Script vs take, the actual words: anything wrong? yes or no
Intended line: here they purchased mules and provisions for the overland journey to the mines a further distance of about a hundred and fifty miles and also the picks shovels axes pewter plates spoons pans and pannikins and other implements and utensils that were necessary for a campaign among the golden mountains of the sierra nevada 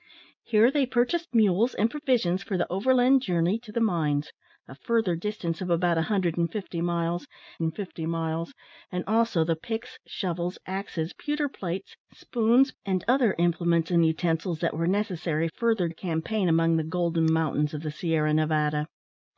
yes